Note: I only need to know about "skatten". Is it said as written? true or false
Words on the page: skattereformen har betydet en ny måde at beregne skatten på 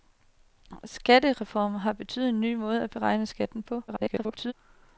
true